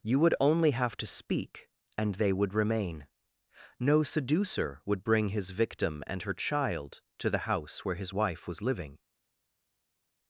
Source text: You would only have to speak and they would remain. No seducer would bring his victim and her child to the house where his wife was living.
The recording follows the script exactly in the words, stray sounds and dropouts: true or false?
true